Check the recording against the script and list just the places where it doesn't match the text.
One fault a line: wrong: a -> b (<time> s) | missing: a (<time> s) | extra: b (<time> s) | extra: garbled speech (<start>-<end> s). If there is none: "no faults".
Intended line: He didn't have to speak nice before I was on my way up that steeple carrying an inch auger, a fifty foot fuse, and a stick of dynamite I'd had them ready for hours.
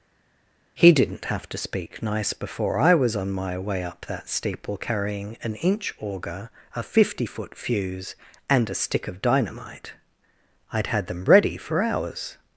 no faults